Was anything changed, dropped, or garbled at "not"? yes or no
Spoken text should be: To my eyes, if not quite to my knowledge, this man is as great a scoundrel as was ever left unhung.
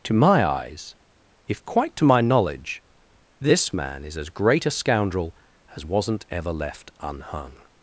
yes